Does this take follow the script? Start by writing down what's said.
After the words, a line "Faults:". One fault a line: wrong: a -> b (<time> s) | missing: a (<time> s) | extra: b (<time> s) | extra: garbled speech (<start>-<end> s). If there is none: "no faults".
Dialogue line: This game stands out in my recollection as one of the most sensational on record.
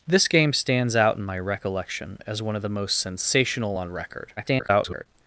This game stands out in my recollection as one of the most sensational on record. [garbled]
Faults:
extra: garbled speech (4.4-5.1 s)